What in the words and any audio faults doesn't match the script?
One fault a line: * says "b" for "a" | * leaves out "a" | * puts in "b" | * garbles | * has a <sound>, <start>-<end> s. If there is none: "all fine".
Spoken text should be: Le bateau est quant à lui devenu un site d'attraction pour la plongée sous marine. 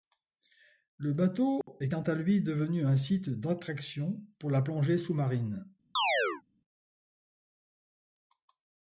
* has a dropout, 1.6-1.7 s
* has a chirp, 6.0-6.4 s